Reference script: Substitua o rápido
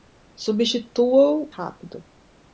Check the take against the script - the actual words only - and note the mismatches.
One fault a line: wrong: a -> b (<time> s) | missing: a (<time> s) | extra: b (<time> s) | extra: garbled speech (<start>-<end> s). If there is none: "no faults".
no faults